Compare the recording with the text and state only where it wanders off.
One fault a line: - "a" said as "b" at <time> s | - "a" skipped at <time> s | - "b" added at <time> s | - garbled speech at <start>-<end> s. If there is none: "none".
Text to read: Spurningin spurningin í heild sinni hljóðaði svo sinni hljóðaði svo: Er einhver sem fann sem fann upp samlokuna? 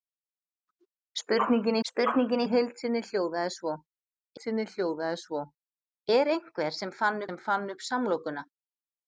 none